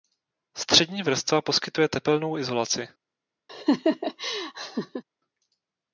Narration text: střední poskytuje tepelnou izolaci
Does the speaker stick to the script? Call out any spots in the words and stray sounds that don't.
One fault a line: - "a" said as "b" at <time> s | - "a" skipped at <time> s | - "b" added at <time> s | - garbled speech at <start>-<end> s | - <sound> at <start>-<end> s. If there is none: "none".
- "vrstva" added at 1.0 s
- laugh at 3.5-5.0 s